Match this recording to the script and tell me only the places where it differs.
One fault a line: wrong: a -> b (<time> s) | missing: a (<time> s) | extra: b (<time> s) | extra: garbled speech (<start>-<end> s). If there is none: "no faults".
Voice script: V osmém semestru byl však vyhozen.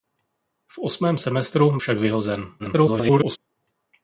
missing: byl (1.8 s)
extra: garbled speech (2.6-3.4 s)